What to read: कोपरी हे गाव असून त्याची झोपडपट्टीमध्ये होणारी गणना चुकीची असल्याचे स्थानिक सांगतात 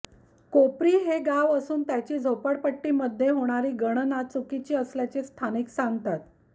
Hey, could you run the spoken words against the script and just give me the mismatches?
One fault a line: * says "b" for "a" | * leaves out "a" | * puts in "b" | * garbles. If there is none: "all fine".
all fine